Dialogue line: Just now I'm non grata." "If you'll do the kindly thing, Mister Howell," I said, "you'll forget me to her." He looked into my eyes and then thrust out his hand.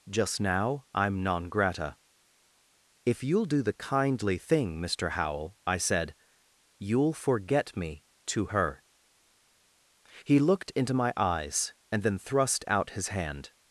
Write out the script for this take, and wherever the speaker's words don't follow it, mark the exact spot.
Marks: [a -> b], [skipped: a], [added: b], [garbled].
Just now I'm non grata." "If you'll do the kindly thing, Mister Howell," I said, "you'll forget me to her." He looked into my eyes and then thrust out his hand.